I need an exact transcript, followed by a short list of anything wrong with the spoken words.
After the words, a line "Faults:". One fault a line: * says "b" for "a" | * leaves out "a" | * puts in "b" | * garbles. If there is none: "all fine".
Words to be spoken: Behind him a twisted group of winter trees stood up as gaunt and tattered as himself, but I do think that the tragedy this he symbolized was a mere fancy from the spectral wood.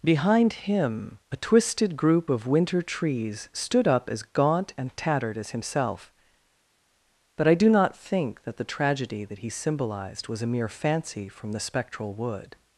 Behind him a twisted group of winter trees stood up as gaunt and tattered as himself, but I do not think that the tragedy that he symbolized was a mere fancy from the spectral wood.
Faults:
* puts in "not"
* says "that" for "this"